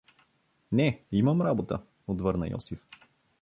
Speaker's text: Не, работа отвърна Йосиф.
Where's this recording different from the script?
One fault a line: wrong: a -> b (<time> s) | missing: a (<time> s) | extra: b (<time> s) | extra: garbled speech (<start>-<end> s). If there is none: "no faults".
extra: имам (1.1 s)